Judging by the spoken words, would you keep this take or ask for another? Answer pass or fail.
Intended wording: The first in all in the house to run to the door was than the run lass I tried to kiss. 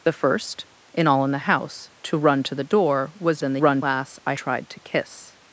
pass